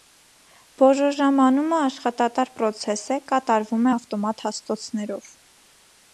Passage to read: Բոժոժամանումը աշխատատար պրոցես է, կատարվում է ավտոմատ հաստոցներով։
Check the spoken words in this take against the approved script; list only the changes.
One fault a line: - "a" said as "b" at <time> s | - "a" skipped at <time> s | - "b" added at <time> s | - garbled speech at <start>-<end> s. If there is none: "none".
none